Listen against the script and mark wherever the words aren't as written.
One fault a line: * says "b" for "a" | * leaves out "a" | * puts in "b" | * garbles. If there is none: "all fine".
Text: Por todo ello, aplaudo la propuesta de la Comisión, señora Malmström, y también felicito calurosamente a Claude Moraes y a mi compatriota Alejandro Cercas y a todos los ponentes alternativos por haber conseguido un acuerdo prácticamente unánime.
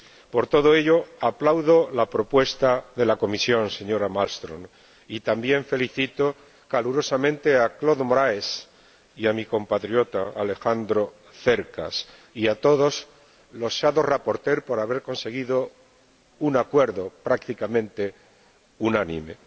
all fine